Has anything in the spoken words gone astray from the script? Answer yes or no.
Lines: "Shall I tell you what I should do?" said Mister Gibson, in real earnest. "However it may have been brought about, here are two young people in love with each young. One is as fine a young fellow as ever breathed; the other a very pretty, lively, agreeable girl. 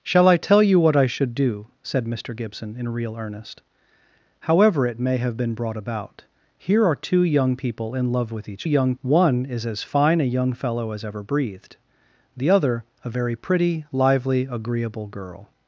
no